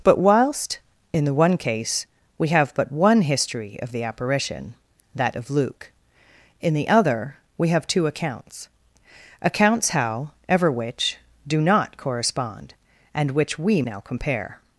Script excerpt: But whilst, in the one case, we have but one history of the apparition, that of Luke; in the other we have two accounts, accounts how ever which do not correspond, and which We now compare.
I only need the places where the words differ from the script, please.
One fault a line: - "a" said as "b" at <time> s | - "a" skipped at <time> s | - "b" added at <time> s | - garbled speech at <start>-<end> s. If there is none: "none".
none